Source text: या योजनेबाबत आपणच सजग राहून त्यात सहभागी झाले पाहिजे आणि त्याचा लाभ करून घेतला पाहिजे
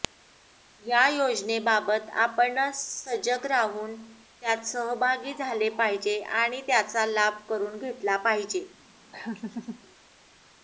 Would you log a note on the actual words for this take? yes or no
no